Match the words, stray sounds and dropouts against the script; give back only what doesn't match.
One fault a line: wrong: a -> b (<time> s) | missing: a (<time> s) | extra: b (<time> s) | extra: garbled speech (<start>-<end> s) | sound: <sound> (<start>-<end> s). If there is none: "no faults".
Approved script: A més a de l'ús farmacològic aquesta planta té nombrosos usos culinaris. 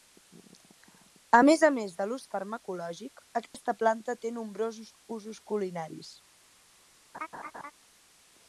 extra: més (1.8 s)
sound: dropout (3.5-3.5 s)
sound: laugh (7.1-7.7 s)